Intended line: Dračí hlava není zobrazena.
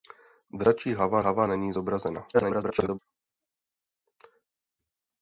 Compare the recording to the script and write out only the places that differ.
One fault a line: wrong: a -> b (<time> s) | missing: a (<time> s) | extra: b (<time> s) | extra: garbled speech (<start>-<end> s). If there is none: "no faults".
extra: hlava (1.2 s)
extra: garbled speech (2.3-3.0 s)